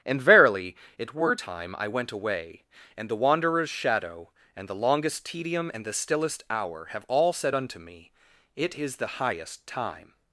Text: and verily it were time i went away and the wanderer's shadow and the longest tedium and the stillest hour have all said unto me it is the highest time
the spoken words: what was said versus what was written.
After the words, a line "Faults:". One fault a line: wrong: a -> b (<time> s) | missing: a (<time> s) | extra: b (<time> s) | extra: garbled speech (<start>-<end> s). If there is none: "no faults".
and verily it were time i went away and the wanderer's shadow and the longest tedium and the stillest hour have all said unto me it is the highest time
Faults:
no faults